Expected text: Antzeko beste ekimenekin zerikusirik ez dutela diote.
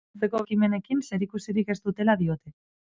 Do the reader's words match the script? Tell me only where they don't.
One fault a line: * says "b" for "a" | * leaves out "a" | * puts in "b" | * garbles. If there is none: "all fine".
* leaves out "beste"